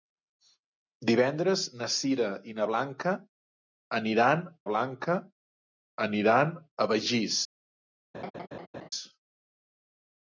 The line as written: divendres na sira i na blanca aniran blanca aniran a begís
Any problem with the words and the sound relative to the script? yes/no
yes